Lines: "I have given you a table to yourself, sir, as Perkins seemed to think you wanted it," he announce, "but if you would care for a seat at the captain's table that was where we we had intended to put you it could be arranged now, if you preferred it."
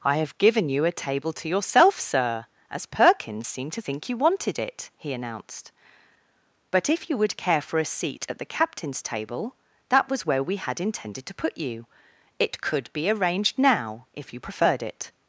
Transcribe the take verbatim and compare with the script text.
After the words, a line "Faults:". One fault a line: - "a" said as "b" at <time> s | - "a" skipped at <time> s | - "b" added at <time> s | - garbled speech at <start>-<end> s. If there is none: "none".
"I have given you a table to yourself, sir, as Perkins seemed to think you wanted it," he announced, "but if you would care for a seat at the captain's table that was where we had intended to put you it could be arranged now, if you preferred it."
Faults:
- "announce" said as "announced" at 5.1 s
- "we" skipped at 10.6 s